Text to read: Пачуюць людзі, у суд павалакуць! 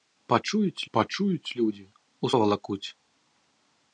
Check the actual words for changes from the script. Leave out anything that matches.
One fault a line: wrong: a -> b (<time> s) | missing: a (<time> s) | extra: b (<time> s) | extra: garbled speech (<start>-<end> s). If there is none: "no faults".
extra: пачуюць (1.0 s)
missing: суд (2.3 s)